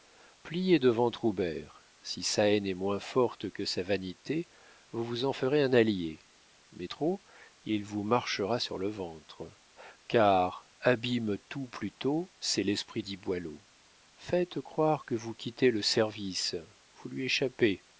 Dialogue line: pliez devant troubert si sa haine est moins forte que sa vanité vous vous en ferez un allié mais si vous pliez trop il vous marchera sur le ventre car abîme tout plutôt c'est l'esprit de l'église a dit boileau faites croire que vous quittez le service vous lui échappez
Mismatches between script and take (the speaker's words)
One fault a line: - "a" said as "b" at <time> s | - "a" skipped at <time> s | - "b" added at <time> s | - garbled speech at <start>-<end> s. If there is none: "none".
- "si vous pliez" skipped at 6.9 s
- "de l'église a" skipped at 13.0 s